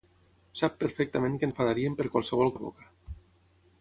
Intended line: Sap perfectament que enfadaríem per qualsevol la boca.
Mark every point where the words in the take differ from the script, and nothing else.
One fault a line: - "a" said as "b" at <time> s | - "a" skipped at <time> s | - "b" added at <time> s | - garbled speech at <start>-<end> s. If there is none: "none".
none